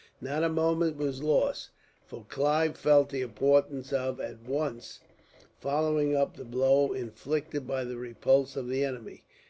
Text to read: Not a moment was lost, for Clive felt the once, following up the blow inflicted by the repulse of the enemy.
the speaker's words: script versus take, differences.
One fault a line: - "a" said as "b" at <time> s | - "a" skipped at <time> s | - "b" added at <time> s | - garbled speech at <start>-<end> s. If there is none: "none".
- "importance of at" added at 3.2 s